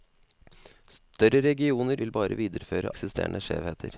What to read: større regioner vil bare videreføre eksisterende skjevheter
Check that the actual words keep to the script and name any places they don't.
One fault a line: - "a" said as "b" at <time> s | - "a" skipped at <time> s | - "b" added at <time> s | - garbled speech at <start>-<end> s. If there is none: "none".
none